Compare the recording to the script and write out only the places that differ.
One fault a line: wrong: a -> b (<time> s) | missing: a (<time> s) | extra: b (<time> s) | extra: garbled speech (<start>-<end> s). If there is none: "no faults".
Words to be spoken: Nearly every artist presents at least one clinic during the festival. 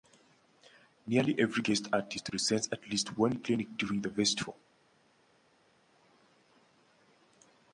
extra: guest (1.6 s)